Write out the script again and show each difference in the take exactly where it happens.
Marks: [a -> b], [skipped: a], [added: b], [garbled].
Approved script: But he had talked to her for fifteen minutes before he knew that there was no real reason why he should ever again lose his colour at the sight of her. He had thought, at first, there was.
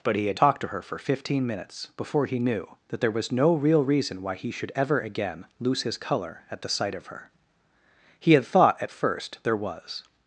But he had talked to her for fifteen minutes before he knew that there was no real reason why he should ever again lose his colour at the sight of her. He had thought, at first, there was.